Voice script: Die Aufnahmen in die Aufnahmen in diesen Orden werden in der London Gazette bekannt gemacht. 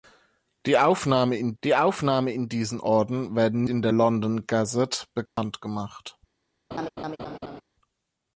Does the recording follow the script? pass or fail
pass